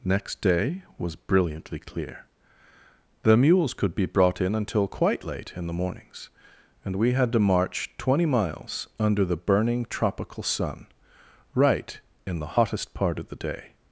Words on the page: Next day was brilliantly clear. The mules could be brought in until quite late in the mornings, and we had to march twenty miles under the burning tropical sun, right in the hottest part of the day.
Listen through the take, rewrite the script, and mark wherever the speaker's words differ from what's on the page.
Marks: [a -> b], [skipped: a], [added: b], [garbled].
Next day was brilliantly clear. The mules could be brought in until quite late in the mornings, and we had to march twenty miles under the burning tropical sun, right in the hottest part of the day.